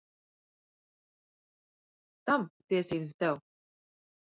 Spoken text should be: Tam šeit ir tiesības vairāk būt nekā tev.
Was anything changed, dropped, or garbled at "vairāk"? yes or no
yes